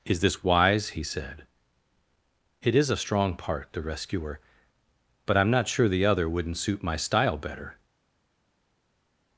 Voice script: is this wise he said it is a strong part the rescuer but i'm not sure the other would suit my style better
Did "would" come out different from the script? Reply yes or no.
yes